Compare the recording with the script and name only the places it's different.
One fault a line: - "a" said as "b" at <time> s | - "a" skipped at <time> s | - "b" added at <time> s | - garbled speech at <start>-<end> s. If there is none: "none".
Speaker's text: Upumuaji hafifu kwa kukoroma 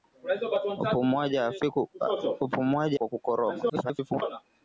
- "hafifu" skipped at 3.0 s
- garbled speech at 3.7-4.2 s